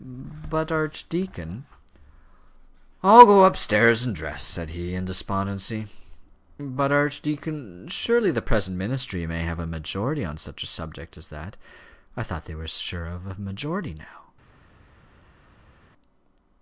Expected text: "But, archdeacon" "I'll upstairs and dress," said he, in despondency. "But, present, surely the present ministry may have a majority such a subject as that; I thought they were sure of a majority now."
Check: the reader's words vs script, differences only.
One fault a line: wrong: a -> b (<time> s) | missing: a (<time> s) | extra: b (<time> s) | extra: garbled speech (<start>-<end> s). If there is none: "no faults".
extra: go (3.3 s)
wrong: present -> archdeacon (6.9 s)
extra: on (10.2 s)